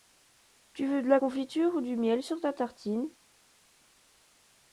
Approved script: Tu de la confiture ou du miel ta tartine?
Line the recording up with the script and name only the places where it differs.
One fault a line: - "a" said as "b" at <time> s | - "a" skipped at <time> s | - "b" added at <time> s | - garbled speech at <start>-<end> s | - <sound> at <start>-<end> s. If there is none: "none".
- "veux" added at 0.9 s
- "sur" added at 2.2 s